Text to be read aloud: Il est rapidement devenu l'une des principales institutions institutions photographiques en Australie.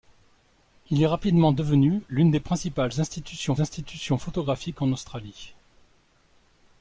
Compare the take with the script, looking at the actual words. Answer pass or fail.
pass